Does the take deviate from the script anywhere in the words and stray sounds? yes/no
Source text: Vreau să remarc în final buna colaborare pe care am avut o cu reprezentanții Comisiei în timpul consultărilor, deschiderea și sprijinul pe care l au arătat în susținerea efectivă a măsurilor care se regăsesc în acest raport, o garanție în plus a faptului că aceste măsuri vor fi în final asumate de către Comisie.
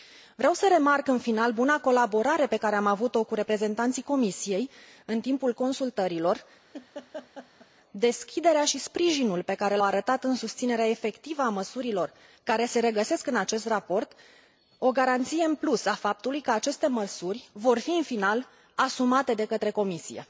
yes